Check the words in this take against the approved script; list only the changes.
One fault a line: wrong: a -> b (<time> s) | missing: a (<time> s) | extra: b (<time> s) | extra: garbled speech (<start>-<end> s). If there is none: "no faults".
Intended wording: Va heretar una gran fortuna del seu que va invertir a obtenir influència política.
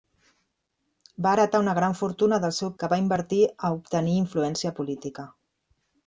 no faults